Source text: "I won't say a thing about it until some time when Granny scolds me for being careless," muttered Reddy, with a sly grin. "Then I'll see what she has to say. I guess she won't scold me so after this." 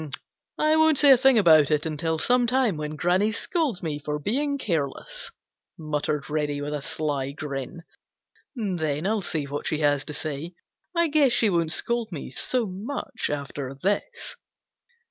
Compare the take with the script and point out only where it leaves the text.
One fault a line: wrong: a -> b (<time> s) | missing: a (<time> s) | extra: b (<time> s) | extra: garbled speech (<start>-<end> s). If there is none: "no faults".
extra: much (12.7 s)